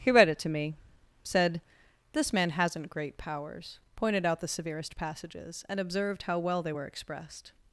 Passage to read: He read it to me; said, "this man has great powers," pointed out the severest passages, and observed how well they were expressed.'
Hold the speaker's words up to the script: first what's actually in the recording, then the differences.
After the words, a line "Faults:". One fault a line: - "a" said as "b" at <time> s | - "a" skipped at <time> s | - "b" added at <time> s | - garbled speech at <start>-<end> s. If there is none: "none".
He read it to me; said, "this man hasn't great powers," pointed out the severest passages, and observed how well they were expressed.'
Faults:
- "has" said as "hasn't" at 2.5 s